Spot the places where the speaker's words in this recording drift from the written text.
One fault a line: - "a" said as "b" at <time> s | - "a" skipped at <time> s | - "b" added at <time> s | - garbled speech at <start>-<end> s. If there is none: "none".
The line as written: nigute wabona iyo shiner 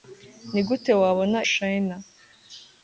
- "iyo" skipped at 1.4 s